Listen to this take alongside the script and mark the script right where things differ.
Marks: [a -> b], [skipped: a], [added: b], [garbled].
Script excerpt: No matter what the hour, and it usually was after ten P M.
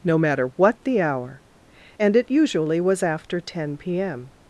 No matter what the hour, and it usually was after ten P M.